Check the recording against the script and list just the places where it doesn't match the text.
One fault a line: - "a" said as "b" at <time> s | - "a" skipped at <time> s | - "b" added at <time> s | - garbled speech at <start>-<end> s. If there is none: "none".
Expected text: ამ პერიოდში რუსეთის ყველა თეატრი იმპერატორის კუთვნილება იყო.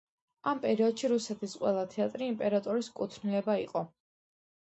none